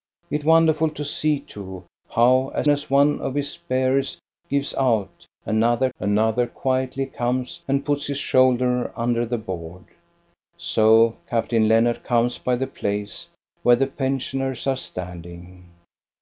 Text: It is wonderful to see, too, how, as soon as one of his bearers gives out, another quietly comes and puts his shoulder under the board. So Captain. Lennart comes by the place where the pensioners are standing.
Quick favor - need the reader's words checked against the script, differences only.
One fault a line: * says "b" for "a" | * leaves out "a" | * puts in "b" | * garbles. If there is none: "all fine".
* leaves out "is"
* leaves out "soon"
* puts in "another"